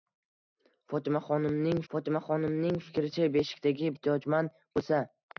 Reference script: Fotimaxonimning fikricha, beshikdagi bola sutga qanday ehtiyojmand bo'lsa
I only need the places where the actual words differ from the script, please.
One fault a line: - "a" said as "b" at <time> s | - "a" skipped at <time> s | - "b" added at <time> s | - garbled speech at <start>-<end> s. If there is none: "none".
- "fotimaxonimning" added at 1.9 s
- "bola sutga qanday" skipped at 3.9 s